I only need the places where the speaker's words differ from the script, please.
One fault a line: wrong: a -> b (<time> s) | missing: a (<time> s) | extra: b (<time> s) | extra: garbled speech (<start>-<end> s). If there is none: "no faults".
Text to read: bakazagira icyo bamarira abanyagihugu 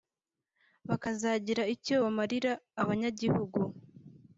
no faults